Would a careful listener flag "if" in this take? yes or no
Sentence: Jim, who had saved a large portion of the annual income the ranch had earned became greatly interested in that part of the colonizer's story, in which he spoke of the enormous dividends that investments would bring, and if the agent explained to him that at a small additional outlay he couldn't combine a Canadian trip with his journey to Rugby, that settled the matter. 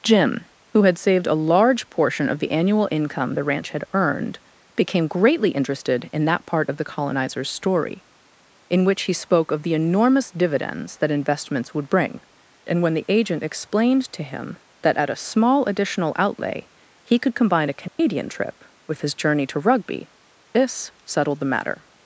yes